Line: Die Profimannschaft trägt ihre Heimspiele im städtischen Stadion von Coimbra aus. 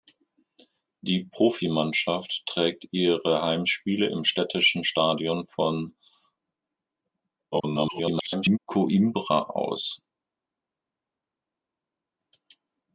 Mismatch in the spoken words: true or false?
true